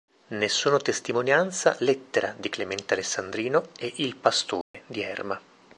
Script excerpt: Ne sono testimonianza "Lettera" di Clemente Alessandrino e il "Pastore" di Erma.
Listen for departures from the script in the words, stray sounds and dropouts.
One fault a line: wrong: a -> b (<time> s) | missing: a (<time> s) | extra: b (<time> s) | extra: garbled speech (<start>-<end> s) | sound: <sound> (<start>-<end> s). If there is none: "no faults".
sound: dropout (4.6-4.7 s)